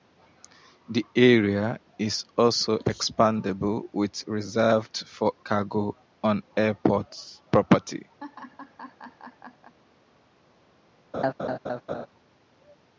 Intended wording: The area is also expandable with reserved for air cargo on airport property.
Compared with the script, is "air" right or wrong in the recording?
wrong